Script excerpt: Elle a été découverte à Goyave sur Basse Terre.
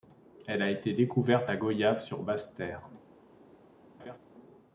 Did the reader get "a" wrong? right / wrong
right